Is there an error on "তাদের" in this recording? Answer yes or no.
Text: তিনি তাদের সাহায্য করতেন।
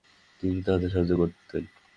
no